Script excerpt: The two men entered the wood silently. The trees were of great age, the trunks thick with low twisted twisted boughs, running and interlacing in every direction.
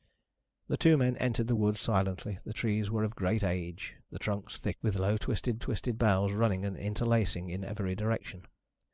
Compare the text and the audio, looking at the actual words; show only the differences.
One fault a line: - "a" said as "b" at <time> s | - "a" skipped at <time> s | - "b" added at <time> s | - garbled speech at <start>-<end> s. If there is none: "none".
none